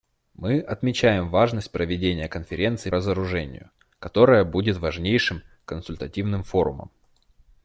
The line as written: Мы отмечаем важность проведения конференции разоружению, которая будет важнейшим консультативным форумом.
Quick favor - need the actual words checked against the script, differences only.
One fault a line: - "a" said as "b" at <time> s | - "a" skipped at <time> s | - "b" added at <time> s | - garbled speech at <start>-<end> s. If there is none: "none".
none